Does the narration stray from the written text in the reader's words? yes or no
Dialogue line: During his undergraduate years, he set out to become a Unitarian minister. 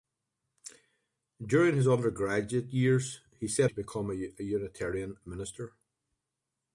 yes